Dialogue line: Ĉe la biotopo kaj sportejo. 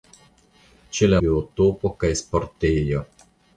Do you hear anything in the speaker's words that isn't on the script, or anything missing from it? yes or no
no